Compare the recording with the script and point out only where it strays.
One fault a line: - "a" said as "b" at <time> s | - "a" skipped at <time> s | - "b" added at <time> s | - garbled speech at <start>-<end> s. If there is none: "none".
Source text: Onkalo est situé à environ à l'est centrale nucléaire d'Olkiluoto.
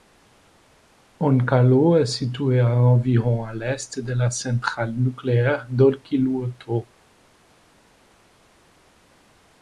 - "de la" added at 4.0 s